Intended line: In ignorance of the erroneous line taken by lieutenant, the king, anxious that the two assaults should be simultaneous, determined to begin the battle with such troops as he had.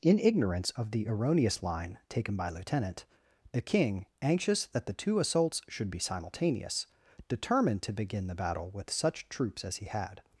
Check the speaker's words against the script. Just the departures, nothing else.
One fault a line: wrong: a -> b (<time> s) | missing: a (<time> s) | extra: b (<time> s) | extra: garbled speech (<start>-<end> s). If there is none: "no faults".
no faults